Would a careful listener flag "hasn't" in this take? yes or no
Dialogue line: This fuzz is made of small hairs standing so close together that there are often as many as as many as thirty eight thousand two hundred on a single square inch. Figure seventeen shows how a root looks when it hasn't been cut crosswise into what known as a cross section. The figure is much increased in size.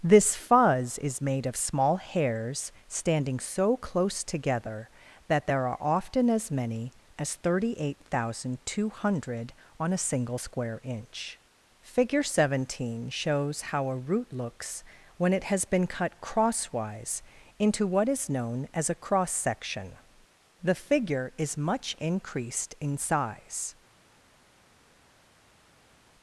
yes